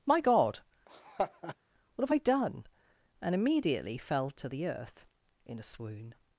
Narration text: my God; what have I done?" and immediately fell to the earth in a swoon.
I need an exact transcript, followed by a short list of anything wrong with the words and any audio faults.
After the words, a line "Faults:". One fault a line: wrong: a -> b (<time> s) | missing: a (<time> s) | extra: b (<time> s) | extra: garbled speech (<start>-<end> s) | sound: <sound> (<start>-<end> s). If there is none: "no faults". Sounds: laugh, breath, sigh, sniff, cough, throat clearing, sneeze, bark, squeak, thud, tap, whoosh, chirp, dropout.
my God; what have I done?" and immediately fell to the earth in a swoon.
Faults:
sound: laugh (0.9-1.6 s)